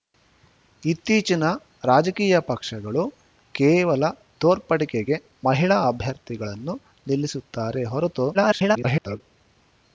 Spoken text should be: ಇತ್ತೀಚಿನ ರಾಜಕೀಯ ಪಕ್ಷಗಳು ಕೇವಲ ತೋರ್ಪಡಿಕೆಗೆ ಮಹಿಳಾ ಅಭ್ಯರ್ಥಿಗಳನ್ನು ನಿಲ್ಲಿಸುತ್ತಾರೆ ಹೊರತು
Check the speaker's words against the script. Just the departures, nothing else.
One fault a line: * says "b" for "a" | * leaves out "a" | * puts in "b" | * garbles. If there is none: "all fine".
* garbles